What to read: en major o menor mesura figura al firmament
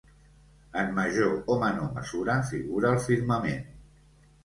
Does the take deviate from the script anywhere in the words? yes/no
no